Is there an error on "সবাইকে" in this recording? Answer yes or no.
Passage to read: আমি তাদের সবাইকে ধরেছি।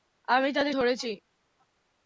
yes